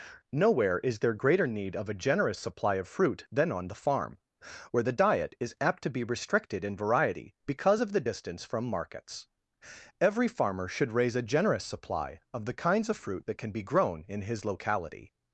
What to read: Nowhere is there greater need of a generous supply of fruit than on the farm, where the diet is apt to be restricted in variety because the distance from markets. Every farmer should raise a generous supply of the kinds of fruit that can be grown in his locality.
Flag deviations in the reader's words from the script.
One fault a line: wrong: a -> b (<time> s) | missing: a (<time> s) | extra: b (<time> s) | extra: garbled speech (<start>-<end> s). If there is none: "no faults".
extra: of (7.8 s)